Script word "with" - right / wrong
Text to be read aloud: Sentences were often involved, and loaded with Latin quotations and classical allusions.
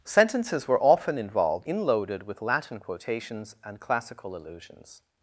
right